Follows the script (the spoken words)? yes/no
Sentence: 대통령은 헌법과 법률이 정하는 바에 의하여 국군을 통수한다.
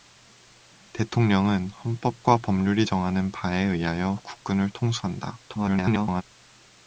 no